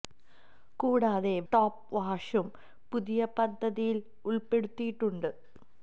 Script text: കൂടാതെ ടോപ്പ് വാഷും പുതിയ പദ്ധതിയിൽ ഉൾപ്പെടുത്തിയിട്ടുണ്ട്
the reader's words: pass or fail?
pass